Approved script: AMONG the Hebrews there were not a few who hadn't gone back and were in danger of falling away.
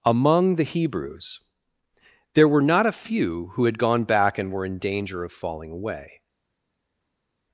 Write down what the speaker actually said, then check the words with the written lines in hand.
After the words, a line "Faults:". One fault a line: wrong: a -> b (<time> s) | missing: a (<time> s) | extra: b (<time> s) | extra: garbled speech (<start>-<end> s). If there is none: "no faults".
AMONG the Hebrews there were not a few who had gone back and were in danger of falling away.
Faults:
wrong: hadn't -> had (3.6 s)